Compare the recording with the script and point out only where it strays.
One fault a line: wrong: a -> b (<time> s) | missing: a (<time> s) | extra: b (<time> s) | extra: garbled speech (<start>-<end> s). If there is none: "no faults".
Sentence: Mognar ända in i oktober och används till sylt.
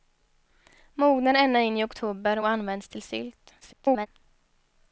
extra: garbled speech (3.6-4.1 s)